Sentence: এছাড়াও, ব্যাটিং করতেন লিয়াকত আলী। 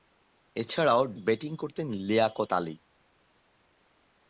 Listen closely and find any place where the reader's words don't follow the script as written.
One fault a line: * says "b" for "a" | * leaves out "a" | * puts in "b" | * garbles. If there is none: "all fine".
all fine